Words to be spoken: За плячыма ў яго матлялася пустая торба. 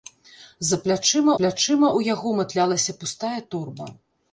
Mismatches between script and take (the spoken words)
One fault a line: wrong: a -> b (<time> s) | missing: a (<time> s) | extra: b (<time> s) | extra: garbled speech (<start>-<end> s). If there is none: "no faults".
extra: плячыма (1.4 s)